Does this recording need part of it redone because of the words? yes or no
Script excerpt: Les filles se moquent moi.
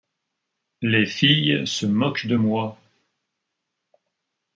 yes